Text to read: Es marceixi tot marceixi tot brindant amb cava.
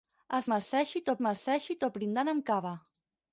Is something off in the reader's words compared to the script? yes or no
no